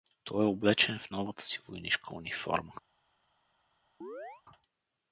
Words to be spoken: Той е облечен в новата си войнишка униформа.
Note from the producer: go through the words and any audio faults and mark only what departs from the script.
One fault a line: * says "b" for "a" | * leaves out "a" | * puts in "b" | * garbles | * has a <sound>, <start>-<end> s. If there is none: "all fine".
* has a chirp, 4.0-4.4 s